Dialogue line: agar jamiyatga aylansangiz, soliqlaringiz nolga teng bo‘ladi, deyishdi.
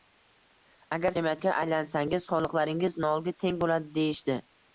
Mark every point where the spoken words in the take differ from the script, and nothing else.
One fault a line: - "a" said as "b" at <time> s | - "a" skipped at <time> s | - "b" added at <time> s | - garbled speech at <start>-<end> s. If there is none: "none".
none